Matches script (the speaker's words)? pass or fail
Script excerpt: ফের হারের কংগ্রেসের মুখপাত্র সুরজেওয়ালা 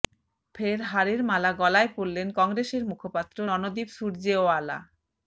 fail